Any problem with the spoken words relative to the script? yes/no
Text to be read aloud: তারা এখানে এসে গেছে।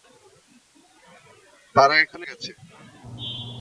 yes